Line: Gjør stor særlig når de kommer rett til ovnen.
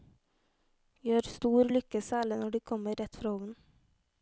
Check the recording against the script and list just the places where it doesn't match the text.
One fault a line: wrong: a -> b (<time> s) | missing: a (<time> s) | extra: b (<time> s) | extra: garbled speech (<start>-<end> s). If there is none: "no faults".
extra: lykke (1.8 s)
wrong: til -> fra (3.2 s)